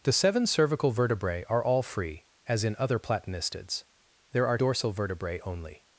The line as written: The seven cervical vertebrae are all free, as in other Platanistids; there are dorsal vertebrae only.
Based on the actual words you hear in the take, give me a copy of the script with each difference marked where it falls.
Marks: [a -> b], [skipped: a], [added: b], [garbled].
The seven cervical vertebrae are all free, as in other Platanistids; there are dorsal vertebrae only.